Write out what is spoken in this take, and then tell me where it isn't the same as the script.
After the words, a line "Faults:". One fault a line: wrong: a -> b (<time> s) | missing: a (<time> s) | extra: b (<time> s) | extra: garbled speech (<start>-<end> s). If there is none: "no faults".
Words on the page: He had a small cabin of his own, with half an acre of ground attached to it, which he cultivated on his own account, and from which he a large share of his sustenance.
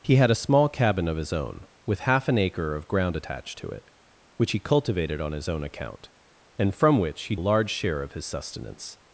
He had a small cabin of his own, with half an acre of ground attached to it, which he cultivated on his own account, and from which he a large share of his sustenance.
Faults:
no faults